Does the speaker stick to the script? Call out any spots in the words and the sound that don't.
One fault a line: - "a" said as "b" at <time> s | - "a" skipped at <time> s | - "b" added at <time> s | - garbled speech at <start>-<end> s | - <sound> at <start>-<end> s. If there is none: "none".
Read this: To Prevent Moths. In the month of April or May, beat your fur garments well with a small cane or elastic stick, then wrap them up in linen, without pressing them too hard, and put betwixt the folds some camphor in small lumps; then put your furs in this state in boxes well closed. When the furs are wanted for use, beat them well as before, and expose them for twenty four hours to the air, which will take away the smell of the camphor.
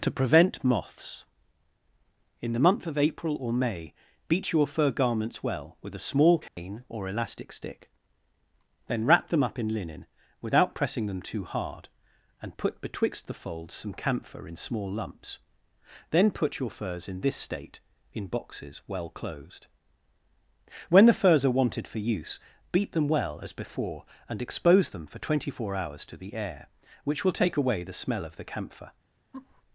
- dropout at 6.5-6.6 s
- laugh at 29.3-29.6 s